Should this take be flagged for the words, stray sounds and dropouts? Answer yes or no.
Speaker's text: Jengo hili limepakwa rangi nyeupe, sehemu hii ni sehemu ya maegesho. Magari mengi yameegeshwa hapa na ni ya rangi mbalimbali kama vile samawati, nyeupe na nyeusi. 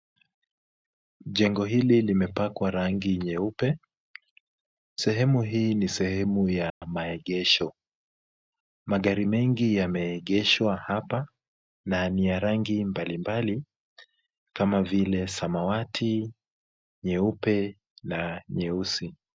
yes